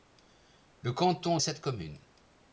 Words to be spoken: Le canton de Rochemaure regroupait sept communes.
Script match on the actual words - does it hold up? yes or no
no